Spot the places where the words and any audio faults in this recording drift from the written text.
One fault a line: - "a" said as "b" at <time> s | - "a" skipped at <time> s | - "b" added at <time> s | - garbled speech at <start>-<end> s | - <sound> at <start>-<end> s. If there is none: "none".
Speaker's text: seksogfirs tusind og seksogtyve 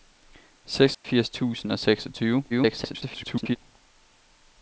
- dropout at 0.9-1.0 s
- garbled speech at 2.5-3.6 s